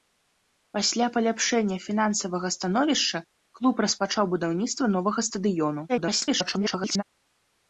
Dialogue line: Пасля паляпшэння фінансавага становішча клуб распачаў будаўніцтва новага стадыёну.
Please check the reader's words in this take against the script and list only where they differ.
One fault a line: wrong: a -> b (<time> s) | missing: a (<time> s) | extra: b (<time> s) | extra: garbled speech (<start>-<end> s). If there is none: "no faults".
extra: garbled speech (5.9-7.0 s)